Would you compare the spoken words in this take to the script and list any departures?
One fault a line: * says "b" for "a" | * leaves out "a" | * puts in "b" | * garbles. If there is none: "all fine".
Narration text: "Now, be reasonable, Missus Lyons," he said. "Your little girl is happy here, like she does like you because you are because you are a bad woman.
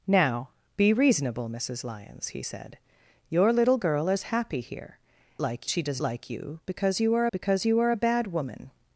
all fine